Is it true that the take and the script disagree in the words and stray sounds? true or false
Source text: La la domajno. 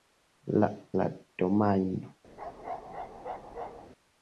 true